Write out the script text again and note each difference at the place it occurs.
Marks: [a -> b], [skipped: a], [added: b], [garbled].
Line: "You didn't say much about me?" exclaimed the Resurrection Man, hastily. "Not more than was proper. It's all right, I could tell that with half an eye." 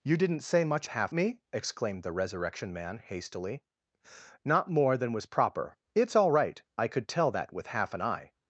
"You didn't say much [about -> half] me?" exclaimed the Resurrection Man, hastily. "Not more than was proper. It's all right, I could tell that with half an eye."